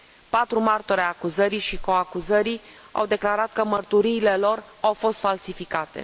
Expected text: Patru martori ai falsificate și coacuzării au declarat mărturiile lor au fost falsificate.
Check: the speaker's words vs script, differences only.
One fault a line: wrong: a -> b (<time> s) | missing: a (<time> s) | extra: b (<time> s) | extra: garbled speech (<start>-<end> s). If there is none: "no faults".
wrong: falsificate -> acuzării (1.1 s)
extra: că (3.5 s)